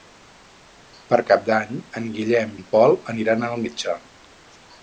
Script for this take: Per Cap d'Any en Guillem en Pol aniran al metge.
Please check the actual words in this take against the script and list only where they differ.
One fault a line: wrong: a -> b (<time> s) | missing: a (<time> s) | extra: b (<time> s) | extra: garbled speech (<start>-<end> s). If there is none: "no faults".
no faults